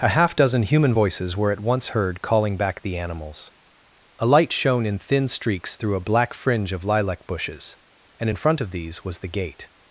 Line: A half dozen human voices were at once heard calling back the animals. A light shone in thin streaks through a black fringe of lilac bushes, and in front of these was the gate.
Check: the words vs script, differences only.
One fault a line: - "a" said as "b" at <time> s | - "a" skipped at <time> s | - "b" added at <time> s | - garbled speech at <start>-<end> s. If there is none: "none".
none